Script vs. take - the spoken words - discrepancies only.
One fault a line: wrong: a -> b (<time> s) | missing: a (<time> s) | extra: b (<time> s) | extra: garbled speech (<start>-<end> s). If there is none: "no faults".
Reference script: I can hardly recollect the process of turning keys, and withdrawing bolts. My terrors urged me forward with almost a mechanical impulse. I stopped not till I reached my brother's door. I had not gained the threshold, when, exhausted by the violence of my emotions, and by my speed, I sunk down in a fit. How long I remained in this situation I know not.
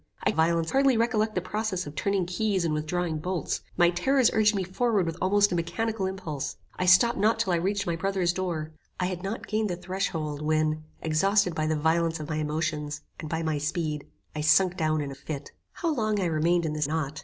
wrong: can -> violence (0.3 s)
missing: situation I know (16.9 s)